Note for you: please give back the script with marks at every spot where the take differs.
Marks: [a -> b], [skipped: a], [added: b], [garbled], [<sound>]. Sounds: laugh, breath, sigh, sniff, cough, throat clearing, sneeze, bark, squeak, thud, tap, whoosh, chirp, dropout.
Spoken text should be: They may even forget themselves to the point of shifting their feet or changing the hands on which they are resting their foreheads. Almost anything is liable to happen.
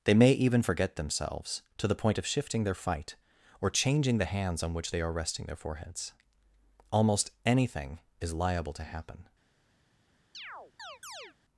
They may even forget themselves to the point of shifting their [feet -> fight] or changing the hands on which they are resting their foreheads. Almost anything is liable to happen. [chirp]